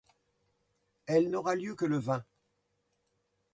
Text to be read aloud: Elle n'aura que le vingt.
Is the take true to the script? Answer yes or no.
no